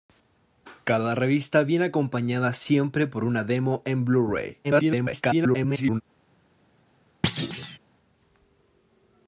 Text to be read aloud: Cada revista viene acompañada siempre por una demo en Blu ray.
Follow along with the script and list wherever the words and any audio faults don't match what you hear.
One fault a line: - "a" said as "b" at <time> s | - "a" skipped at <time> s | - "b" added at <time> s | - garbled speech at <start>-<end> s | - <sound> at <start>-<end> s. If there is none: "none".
- garbled speech at 4.6-6.0 s
- thud at 7.2-7.8 s